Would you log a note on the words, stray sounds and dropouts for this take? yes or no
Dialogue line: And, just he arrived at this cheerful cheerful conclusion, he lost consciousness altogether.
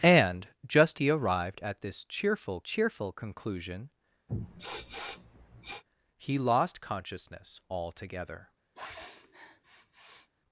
yes